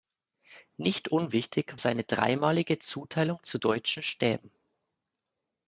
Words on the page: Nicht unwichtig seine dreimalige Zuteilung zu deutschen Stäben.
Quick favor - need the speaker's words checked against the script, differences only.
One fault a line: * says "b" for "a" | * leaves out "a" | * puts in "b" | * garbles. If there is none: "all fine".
all fine